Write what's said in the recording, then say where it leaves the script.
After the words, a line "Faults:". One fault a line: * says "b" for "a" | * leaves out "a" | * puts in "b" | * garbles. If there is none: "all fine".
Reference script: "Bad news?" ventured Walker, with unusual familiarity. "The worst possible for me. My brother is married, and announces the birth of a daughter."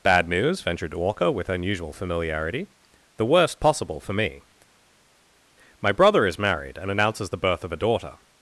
"Bad news?" ventured Walker, with unusual familiarity. "The worst possible for me. My brother is married, and announces the birth of a daughter."
Faults:
all fine